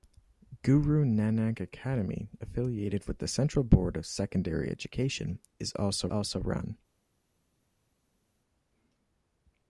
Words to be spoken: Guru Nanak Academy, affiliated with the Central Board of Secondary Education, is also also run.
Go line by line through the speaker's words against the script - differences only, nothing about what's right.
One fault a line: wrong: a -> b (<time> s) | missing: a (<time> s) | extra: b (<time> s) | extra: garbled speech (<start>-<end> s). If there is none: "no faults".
no faults